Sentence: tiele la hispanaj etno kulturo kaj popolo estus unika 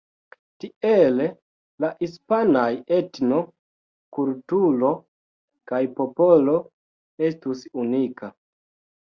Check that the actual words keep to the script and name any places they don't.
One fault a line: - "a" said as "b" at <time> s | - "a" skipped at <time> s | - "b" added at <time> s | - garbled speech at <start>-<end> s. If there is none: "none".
none